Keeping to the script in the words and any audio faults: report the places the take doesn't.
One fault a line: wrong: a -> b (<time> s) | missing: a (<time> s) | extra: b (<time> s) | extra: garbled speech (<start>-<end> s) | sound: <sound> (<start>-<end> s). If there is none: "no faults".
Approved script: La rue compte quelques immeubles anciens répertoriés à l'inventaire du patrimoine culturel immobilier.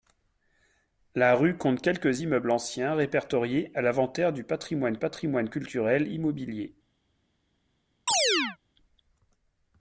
extra: patrimoine (5.0 s)
sound: chirp (8.1-8.6 s)